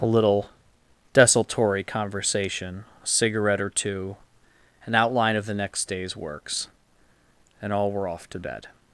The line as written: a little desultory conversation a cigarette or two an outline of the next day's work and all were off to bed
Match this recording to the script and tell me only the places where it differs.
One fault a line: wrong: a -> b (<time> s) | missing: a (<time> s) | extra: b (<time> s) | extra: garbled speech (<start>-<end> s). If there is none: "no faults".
wrong: work -> works (6.2 s)